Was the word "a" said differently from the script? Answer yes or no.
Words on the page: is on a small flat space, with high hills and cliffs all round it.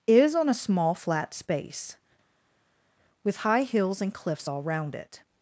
no